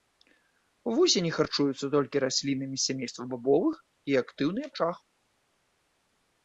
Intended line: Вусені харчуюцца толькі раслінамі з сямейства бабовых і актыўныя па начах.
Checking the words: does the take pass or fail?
fail